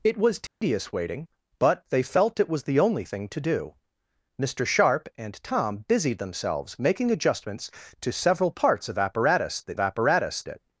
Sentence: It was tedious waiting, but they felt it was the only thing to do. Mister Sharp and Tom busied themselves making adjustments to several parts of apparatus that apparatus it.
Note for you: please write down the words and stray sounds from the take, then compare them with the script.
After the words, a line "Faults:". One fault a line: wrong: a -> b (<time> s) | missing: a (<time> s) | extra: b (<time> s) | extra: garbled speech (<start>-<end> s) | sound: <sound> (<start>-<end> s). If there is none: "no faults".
It was tedious waiting, but they felt it was the only thing to do. Mister Sharp and Tom busied themselves making adjustments to several parts of apparatus that apparatus it.
Faults:
sound: dropout (0.5-0.6 s)